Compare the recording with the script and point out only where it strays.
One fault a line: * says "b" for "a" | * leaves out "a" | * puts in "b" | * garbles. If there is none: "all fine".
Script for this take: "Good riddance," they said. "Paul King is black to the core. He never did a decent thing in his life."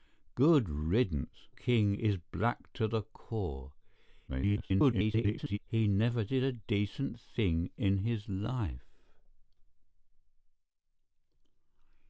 * leaves out "they said Paul"
* garbles